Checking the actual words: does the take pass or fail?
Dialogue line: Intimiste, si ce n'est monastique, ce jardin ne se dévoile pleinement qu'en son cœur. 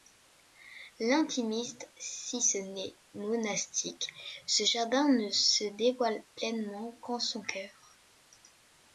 pass